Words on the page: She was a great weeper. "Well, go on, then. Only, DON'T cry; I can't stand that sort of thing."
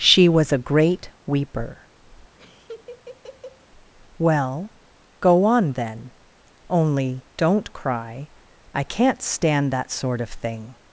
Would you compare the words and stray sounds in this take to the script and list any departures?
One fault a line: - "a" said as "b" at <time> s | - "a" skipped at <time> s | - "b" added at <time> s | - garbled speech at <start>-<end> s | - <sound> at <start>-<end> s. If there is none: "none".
- laugh at 2.4-3.7 s